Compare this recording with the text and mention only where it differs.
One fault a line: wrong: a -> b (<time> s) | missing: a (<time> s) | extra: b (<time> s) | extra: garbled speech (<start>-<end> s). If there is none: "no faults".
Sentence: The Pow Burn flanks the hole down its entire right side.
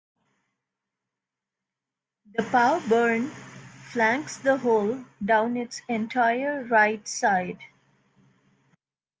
no faults